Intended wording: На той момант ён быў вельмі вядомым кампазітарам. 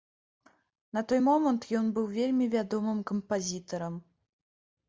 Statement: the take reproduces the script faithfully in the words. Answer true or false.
true